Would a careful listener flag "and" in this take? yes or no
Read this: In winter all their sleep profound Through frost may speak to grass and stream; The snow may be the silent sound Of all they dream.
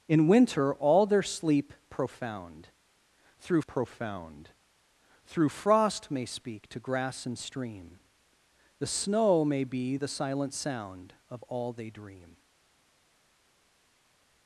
no